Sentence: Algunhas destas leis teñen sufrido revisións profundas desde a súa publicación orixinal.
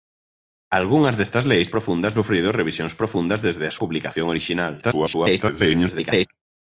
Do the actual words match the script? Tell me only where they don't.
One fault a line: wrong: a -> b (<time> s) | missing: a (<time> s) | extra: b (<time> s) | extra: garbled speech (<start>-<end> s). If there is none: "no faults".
wrong: teñen -> profundas (1.7 s)
missing: súa (3.8 s)
extra: garbled speech (4.8-6.3 s)